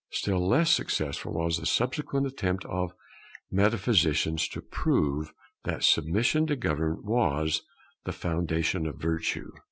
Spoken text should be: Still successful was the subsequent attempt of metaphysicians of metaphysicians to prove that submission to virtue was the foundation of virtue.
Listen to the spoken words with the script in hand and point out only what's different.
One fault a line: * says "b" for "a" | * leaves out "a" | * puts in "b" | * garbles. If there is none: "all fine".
* puts in "less"
* leaves out "of metaphysicians"
* says "government" for "virtue"